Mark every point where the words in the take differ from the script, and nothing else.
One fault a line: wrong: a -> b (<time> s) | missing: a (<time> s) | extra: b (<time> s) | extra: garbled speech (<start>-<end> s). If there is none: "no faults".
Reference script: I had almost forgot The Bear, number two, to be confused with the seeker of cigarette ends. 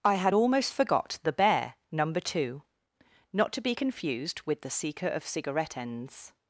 extra: not (3.3 s)